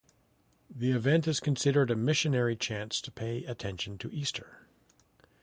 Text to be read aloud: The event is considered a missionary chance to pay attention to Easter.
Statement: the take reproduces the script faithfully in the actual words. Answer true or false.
true